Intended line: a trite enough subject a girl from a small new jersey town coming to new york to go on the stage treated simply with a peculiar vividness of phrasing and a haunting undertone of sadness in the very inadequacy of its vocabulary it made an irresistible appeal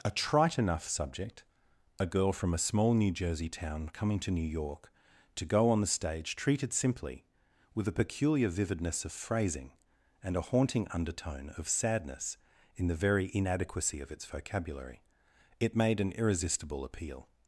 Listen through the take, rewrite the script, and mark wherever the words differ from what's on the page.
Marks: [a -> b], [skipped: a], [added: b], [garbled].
a trite enough subject a girl from a small new jersey town coming to new york to go on the stage treated simply with a peculiar vividness of phrasing and a haunting undertone of sadness in the very inadequacy of its vocabulary it made an irresistible appeal